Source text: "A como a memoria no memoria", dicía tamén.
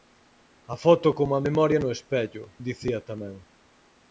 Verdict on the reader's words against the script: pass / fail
fail